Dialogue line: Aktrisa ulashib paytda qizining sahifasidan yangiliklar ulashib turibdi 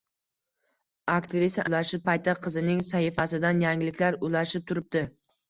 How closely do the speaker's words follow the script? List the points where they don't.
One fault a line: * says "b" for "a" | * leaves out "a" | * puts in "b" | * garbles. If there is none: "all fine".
all fine